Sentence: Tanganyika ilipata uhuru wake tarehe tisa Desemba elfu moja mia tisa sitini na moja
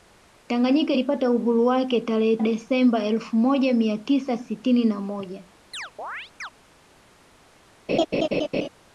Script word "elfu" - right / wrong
right